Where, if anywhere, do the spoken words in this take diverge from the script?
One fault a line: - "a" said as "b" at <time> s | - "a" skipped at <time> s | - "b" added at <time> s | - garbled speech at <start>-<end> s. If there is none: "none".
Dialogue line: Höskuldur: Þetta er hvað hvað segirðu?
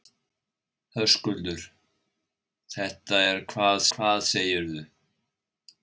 none